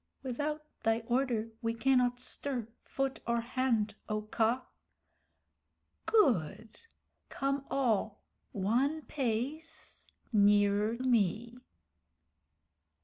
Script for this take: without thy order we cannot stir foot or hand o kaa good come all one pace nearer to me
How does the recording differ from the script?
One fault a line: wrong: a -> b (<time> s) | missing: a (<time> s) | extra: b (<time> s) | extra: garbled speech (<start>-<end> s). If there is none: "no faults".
missing: to (11.0 s)